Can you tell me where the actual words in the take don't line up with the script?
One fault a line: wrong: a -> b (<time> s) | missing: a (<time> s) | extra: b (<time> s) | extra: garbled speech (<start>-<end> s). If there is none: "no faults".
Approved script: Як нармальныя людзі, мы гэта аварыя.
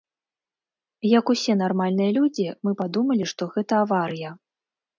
extra: усе (1.4 s)
extra: падумалі што (2.8 s)